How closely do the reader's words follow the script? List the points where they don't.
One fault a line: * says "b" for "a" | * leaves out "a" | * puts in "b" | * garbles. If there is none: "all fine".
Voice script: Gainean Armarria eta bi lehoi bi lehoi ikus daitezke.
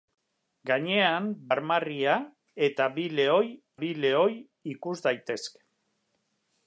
all fine